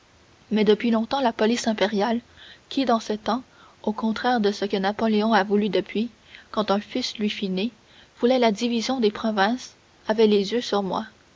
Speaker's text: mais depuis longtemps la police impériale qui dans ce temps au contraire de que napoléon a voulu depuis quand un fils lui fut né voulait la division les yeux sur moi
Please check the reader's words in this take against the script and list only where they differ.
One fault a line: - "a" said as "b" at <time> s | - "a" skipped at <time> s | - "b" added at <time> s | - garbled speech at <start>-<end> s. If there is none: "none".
- "ce" added at 4.5 s
- "des provinces avait" added at 9.0 s